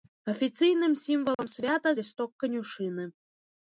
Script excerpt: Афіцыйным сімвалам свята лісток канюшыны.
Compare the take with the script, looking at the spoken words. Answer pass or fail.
pass